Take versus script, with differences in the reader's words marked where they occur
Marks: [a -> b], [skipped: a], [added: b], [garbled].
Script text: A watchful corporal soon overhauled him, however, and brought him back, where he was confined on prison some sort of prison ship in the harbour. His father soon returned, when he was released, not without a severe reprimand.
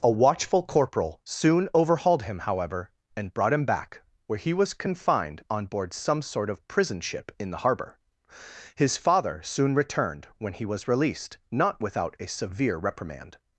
A watchful corporal soon overhauled him, however, and brought him back, where he was confined on [prison -> board] some sort of prison ship in the harbour. His father soon returned, when he was released, not without a severe reprimand.